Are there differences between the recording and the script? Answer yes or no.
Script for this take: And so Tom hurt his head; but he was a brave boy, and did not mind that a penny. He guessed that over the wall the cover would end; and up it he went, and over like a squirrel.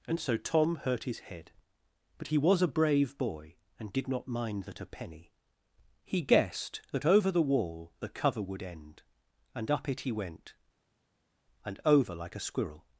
no